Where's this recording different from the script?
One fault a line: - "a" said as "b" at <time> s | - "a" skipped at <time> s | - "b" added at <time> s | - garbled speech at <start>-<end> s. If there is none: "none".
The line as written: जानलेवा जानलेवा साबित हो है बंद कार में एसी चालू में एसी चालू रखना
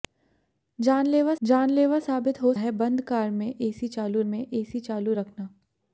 none